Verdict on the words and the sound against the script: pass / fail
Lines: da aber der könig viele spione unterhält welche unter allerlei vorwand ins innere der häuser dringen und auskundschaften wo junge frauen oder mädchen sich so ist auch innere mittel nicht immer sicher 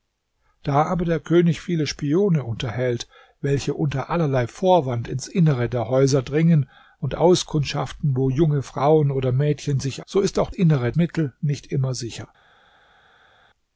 pass